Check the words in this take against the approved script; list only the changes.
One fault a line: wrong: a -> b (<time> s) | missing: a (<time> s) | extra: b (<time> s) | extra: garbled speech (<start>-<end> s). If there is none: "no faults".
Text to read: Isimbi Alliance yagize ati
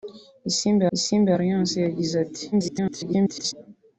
extra: isimbi (1.0 s)
extra: garbled speech (2.5-3.5 s)